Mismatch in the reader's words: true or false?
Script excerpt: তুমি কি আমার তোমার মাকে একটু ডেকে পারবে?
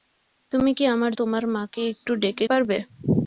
false